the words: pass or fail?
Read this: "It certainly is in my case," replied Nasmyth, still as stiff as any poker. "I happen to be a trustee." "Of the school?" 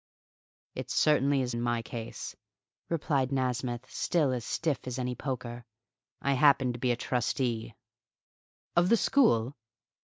pass